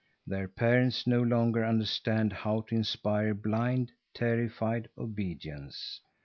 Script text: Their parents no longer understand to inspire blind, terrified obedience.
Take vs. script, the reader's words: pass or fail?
fail